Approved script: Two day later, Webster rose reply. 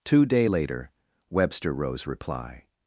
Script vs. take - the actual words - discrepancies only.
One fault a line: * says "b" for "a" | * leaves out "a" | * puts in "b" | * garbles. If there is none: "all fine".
all fine